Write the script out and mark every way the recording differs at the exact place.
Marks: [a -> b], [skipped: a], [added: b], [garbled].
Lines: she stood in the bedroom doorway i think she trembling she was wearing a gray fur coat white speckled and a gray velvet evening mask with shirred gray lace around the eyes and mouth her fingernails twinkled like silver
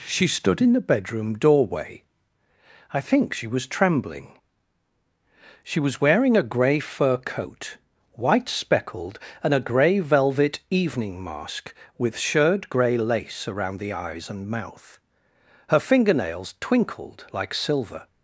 she stood in the bedroom doorway i think she [added: was] trembling she was wearing a gray fur coat white speckled and a gray velvet evening mask with shirred gray lace around the eyes and mouth her fingernails twinkled like silver